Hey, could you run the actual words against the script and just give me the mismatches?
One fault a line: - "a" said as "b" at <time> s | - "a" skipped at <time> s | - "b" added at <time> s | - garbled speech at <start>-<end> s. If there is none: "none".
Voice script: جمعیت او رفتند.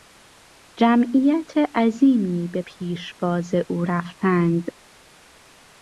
- "عظیمی به پیشواز" added at 1.8 s